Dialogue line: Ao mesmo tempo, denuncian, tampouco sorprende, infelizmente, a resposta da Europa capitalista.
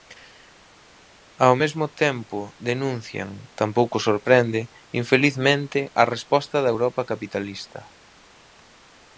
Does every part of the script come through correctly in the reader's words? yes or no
yes